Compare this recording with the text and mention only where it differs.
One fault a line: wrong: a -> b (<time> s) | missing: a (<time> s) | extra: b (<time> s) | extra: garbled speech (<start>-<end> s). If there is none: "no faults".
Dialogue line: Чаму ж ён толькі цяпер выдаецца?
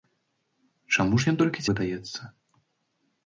missing: цяпер (1.7 s)